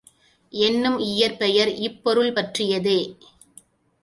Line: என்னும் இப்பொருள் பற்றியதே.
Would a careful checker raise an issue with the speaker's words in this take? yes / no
yes